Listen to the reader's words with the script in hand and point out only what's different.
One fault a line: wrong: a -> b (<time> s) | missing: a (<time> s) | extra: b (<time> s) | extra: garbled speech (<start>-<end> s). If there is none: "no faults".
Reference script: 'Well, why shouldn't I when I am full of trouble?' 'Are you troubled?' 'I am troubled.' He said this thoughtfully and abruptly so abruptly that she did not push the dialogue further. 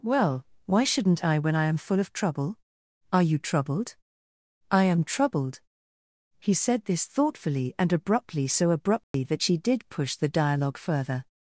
missing: not (9.9 s)